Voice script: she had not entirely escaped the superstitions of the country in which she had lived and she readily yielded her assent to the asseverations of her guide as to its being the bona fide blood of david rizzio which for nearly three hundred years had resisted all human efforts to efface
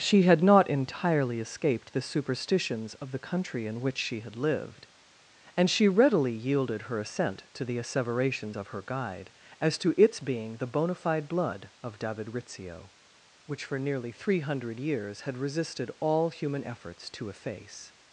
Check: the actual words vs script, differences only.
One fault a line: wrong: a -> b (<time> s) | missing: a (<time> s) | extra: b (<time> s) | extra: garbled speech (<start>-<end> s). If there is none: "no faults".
no faults